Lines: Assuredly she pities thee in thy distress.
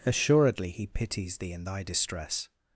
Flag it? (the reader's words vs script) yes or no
yes